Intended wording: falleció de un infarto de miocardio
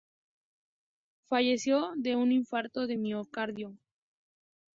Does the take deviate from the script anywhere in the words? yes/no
no